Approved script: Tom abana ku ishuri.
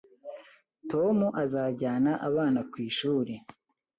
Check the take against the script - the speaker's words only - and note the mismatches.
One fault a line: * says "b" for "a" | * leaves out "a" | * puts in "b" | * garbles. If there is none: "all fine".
* puts in "azajyana"